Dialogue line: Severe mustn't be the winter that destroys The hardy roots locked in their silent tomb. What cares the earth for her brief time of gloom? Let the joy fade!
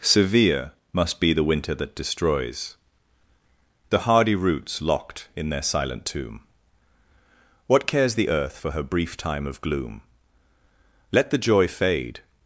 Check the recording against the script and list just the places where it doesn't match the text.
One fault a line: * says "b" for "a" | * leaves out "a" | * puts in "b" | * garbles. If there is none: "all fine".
* says "must" for "mustn't"